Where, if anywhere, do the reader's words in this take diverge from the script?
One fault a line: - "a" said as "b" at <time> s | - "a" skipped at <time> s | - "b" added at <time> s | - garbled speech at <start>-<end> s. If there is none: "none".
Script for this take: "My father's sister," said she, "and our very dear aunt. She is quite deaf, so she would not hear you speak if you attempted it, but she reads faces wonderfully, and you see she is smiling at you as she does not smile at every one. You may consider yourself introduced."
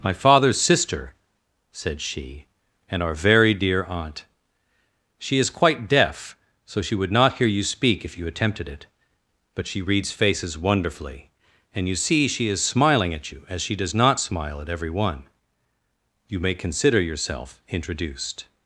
none